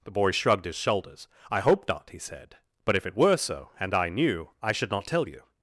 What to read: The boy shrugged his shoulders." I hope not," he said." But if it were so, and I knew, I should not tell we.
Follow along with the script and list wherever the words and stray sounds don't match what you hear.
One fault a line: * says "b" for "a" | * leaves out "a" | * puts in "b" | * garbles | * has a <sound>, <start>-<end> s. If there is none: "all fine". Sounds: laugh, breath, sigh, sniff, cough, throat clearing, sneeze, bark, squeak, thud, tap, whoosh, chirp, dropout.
* says "you" for "we"